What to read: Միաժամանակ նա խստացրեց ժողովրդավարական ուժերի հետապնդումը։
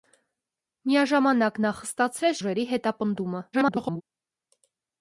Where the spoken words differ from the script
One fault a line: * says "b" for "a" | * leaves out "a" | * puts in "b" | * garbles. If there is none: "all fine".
* leaves out "ժողովրդավարական"
* garbles